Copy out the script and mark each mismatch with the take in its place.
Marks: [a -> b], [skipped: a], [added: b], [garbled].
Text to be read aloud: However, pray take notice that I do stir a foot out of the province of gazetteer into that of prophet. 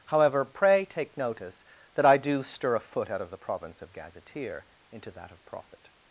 However, pray take notice that I do stir a foot out of the province of gazetteer into that of prophet.